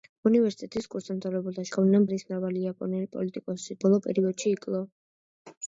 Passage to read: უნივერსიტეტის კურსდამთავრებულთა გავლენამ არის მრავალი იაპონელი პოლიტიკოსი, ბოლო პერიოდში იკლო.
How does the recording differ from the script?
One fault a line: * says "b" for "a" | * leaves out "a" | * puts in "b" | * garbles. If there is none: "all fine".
all fine